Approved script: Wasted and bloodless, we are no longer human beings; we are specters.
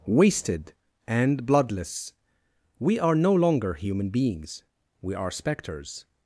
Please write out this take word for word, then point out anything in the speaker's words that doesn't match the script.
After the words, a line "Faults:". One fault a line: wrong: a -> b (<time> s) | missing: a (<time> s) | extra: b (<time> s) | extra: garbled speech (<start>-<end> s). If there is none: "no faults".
Wasted and bloodless, we are no longer human beings; we are specters.
Faults:
no faults